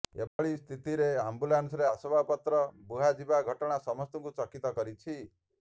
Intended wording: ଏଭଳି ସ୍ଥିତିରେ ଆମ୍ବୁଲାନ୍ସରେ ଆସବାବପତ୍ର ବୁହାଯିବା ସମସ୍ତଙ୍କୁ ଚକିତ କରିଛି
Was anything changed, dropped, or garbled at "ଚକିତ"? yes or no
no